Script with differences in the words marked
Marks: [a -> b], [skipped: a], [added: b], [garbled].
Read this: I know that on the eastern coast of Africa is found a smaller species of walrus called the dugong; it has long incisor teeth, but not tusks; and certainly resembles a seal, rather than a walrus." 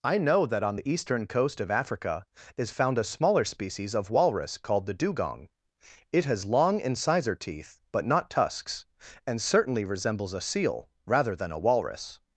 I know that on the eastern coast of Africa is found a smaller species of walrus called the dugong; it has long incisor teeth, but not tusks; and certainly resembles a seal, rather than a walrus."